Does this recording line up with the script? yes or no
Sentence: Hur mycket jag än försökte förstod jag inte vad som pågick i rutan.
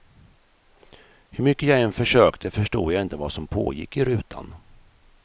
yes